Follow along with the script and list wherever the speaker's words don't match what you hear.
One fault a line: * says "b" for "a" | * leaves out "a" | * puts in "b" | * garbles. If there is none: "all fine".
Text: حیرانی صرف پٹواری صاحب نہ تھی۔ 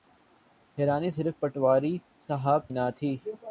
all fine